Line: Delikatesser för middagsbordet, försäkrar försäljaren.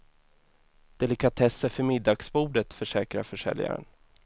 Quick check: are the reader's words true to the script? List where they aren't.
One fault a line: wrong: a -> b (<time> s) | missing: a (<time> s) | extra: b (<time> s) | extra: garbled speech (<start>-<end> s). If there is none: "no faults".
no faults